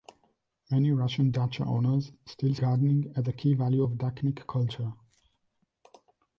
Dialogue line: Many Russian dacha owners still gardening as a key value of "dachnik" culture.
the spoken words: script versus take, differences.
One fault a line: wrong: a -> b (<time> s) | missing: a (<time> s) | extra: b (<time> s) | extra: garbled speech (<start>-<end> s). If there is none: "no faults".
no faults